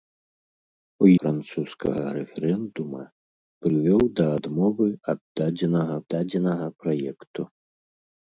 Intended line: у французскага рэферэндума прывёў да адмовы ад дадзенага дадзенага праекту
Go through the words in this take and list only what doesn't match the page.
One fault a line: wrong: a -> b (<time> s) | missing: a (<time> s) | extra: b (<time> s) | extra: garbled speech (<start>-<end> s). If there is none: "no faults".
no faults